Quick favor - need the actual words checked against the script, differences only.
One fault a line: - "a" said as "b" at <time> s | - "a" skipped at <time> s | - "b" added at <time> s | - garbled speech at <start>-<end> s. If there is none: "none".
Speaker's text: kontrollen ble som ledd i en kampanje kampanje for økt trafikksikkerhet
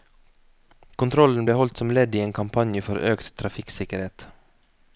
- "holdt" added at 1.6 s
- "kampanje" skipped at 2.8 s